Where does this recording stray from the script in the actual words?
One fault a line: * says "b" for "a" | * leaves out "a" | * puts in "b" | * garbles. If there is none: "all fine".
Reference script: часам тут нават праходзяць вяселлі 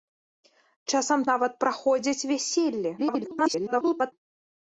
* leaves out "тут"
* garbles